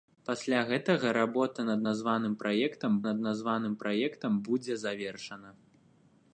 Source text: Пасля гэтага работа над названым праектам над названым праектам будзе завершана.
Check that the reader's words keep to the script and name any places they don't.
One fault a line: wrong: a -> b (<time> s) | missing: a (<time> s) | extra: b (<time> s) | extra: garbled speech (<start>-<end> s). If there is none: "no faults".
no faults